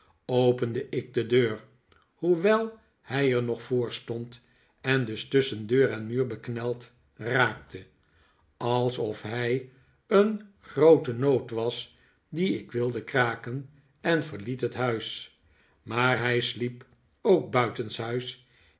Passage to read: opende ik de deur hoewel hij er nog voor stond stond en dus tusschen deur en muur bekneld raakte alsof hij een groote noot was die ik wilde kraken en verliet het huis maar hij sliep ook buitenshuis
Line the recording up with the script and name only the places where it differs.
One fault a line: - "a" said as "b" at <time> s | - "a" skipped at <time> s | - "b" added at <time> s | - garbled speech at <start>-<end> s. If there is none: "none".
- "stond" skipped at 4.5 s